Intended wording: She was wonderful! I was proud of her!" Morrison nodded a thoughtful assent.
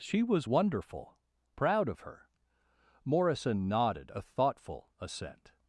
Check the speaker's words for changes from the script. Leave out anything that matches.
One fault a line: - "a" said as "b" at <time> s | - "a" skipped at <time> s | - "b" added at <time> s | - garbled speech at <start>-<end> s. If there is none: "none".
- "I was" skipped at 1.2 s